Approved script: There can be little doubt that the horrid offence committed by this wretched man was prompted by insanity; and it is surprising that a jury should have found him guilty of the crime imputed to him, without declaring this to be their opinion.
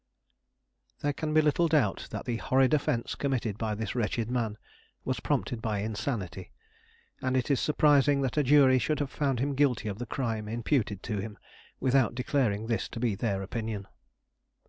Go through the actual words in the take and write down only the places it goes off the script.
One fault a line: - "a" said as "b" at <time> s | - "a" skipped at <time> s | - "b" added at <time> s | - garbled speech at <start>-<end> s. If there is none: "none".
none